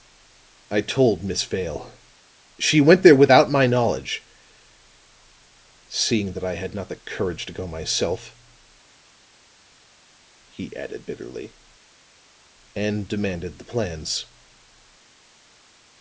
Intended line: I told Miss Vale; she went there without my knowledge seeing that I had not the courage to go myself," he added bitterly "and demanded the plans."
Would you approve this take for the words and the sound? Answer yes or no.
yes